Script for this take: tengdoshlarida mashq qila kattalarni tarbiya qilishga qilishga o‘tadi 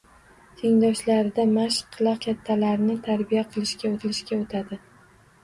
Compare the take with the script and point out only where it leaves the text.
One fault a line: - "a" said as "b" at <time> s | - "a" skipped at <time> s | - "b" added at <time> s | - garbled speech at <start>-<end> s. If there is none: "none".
none